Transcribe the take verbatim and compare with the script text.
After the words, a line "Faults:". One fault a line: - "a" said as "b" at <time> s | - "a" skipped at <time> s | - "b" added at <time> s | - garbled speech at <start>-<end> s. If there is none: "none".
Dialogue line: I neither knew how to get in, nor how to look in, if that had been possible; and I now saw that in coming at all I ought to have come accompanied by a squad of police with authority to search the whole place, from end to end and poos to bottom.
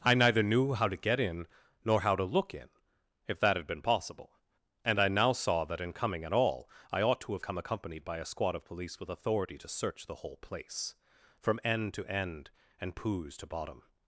I neither knew how to get in, nor how to look in, if that had been possible; and I now saw that in coming at all I ought to have come accompanied by a squad of police with authority to search the whole place, from end to end and poos to bottom.
Faults:
none